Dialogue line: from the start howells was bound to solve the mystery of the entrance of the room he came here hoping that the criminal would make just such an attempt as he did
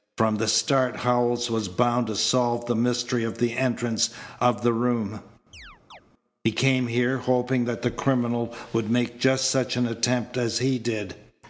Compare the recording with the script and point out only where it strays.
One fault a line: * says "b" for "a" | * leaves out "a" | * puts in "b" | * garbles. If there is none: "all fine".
all fine